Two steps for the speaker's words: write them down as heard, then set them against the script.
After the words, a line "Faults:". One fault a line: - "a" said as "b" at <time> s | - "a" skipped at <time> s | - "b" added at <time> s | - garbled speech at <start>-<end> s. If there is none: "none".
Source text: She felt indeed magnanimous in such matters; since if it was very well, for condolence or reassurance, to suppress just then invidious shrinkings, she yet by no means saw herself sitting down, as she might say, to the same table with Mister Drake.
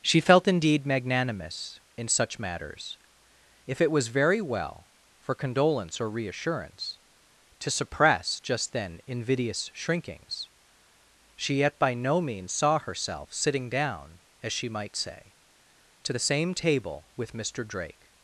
She felt indeed magnanimous in such matters; if it was very well, for condolence or reassurance, to suppress just then invidious shrinkings, she yet by no means saw herself sitting down, as she might say, to the same table with Mister Drake.
Faults:
- "since" skipped at 3.0 s